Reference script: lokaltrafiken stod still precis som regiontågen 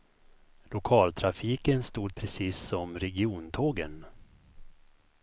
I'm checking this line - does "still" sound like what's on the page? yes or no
no